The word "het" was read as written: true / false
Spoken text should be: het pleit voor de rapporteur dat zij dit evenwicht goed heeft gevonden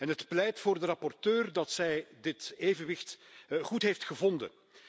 true